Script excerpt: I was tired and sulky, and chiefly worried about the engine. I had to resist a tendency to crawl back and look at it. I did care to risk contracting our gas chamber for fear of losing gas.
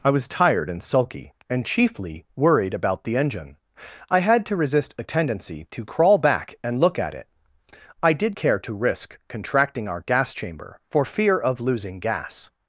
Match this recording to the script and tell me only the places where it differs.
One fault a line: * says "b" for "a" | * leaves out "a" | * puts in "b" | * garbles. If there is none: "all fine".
all fine